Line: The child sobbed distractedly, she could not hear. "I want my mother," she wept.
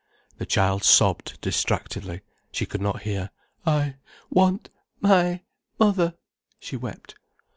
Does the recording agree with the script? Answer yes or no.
yes